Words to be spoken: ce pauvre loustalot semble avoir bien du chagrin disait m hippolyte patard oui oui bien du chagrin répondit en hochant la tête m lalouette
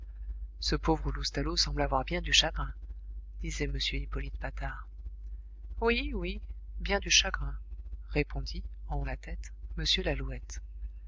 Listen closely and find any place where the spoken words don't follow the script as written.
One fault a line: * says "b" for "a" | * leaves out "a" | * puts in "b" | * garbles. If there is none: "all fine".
* leaves out "hochant"